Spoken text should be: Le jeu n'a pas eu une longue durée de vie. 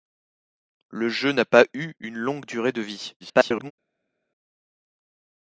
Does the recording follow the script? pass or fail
fail